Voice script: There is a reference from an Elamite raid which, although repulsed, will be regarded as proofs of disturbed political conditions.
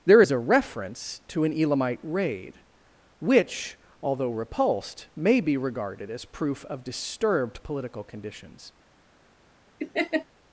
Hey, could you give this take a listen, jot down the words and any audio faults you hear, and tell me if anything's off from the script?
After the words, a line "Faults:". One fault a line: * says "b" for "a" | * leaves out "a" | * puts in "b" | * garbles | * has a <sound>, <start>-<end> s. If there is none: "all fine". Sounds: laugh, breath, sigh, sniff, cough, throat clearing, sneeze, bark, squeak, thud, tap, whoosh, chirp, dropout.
There is a reference to an Elamite raid which, although repulsed, may be regarded as proof of disturbed political conditions.
Faults:
* says "to" for "from"
* says "may" for "will"
* says "proof" for "proofs"
* has a laugh, 9.8-10.3 s